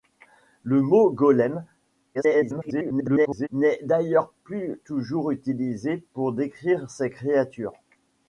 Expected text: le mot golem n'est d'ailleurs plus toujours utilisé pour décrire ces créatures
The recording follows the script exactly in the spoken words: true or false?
false